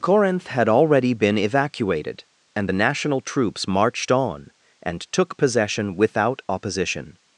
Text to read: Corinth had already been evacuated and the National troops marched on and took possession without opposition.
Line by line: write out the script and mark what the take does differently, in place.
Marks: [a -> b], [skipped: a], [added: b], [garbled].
Corinth had already been evacuated and the National troops marched on and took possession without opposition.